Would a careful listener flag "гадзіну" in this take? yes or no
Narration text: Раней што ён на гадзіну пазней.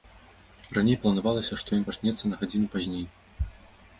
no